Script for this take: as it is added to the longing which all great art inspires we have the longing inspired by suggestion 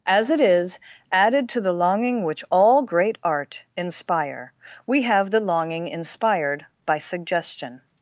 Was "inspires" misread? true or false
true